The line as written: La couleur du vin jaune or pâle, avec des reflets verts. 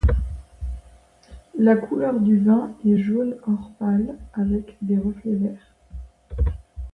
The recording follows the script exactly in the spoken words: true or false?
false